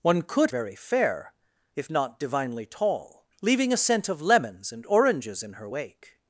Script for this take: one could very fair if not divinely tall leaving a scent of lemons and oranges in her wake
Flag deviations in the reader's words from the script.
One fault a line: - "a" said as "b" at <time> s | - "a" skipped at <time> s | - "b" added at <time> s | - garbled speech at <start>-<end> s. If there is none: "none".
none